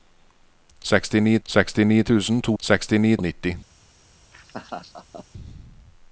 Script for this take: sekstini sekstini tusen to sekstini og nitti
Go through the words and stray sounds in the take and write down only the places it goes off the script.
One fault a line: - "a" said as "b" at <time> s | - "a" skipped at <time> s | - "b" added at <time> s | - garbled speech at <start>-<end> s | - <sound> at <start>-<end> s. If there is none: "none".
- laugh at 4.3-5.3 s